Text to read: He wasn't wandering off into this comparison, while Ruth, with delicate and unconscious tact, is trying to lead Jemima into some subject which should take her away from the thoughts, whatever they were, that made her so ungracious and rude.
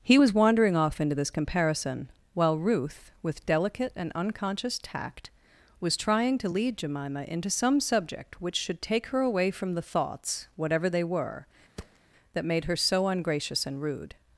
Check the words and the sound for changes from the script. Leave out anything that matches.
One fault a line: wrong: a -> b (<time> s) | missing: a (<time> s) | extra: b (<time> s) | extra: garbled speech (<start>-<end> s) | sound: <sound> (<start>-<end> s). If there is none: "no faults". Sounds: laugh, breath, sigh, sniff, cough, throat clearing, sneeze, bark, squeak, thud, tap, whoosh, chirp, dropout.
wrong: wasn't -> was (0.1 s)
wrong: is -> was (5.8 s)
sound: thud (11.8-12.0 s)